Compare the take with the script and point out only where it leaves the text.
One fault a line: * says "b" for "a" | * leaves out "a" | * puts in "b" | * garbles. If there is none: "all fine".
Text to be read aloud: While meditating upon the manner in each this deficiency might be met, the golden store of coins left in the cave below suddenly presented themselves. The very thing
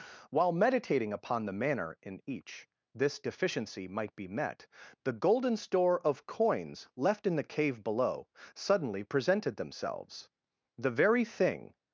all fine